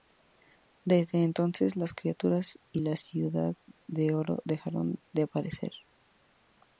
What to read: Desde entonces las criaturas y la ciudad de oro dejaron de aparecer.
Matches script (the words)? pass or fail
pass